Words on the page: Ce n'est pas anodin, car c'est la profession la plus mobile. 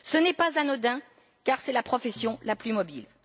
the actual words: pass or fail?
pass